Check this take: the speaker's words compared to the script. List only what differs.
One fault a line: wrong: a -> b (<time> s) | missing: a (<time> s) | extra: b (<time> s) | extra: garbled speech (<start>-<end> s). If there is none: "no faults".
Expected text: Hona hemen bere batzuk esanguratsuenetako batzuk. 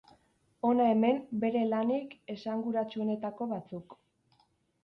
wrong: batzuk -> lanik (1.7 s)